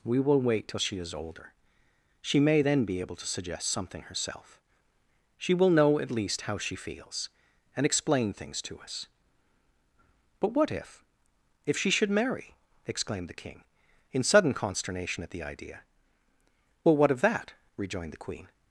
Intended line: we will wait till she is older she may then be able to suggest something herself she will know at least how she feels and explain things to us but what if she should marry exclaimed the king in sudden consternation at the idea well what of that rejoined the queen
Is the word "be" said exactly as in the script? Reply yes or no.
yes